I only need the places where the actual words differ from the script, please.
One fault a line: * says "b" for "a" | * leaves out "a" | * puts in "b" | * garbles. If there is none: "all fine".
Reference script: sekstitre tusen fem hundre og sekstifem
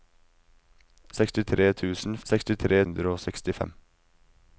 * says "sekstitre" for "fem"